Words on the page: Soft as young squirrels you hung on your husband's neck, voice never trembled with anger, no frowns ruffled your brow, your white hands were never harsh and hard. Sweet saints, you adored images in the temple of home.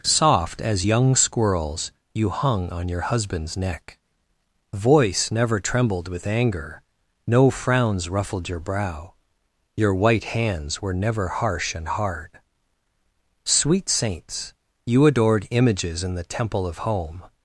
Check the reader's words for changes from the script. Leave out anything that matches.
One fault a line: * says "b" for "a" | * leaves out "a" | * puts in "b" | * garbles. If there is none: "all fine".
all fine